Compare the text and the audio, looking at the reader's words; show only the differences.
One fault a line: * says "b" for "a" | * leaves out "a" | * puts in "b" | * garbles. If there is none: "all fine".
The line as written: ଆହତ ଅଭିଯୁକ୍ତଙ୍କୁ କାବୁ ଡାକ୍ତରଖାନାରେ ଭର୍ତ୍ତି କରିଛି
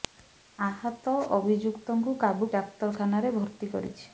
all fine